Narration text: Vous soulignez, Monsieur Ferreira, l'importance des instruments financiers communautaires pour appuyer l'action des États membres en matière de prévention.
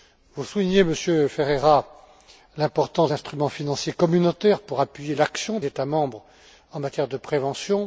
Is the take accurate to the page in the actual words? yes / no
no